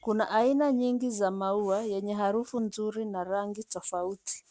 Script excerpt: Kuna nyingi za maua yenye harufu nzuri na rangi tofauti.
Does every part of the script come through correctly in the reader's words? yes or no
no